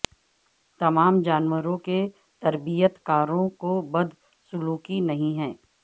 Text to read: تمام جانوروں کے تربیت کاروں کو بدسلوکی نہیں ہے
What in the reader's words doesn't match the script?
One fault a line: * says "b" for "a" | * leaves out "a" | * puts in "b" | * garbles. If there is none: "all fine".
all fine